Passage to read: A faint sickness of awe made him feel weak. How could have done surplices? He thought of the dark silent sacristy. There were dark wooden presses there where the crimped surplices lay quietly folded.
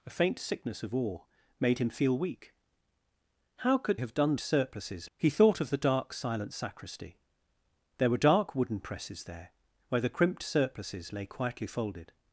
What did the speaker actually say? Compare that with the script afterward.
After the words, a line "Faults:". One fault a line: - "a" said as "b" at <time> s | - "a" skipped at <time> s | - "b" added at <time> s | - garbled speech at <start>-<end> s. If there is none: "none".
A faint sickness of awe made him feel weak. How could have done surplices? He thought of the dark silent sacristy. There were dark wooden presses there where the crimped surplices lay quietly folded.
Faults:
none